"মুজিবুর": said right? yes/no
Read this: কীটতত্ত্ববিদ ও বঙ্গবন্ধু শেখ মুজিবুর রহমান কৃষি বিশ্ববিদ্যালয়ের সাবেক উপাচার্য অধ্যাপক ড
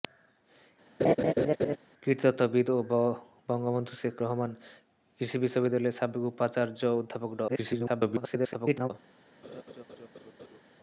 no